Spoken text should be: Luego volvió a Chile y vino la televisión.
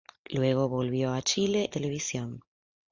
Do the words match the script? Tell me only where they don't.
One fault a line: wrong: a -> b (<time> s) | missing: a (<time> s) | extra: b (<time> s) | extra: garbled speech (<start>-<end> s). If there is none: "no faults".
missing: y vino la (1.7 s)